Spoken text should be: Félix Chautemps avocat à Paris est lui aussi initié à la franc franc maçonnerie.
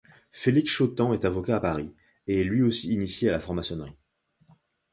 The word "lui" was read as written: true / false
true